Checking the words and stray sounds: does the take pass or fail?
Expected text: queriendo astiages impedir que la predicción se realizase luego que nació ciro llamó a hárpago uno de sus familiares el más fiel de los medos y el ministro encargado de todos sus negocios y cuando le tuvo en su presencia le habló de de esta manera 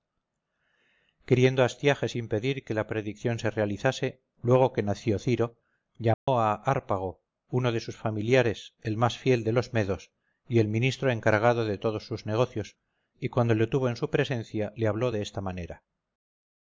fail